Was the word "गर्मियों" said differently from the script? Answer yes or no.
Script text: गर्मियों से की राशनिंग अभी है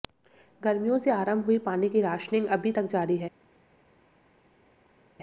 no